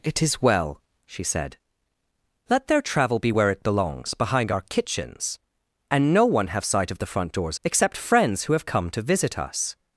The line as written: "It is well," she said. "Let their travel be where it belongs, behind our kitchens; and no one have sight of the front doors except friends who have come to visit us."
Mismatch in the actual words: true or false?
false